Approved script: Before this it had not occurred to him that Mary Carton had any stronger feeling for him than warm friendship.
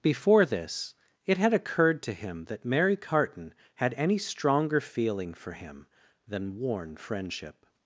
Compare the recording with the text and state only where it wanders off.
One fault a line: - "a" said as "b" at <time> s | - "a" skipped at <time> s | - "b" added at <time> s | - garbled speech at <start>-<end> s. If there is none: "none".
- "not" skipped at 1.5 s
- "warm" said as "worn" at 6.6 s